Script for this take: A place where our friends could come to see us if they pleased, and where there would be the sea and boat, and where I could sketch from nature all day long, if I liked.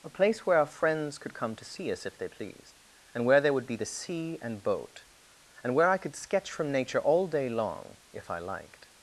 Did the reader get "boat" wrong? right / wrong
right